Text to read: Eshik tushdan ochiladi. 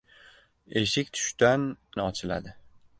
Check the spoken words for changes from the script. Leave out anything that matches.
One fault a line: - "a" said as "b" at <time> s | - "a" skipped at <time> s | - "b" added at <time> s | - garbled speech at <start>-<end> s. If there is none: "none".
none